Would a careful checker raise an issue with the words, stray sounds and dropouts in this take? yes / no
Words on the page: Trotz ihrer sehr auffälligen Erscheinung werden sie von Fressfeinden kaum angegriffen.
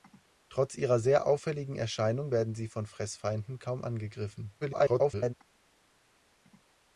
yes